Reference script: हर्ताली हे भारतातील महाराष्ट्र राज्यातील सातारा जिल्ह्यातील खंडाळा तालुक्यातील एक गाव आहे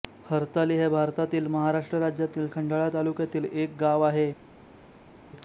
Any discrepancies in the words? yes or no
yes